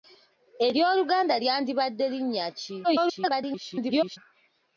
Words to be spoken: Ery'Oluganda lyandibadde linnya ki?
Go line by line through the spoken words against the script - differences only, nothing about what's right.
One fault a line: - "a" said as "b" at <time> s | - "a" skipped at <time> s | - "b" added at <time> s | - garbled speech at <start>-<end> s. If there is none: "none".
- garbled speech at 2.8-4.2 s